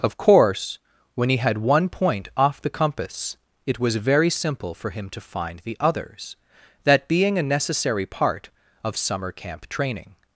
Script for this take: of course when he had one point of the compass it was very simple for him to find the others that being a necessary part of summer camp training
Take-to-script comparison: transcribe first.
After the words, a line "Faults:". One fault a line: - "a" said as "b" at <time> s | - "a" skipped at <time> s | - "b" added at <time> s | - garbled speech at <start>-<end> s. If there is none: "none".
of course when he had one point off the compass it was very simple for him to find the others that being a necessary part of summer camp training
Faults:
- "of" said as "off" at 2.4 s